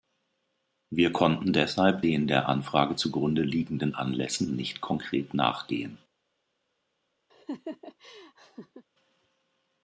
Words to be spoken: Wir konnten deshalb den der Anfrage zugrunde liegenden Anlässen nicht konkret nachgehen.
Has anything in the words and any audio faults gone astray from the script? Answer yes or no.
yes